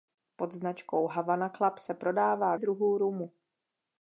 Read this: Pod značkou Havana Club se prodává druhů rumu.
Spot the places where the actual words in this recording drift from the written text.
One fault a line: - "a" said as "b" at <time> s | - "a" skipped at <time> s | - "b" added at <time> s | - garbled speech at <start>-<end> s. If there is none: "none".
none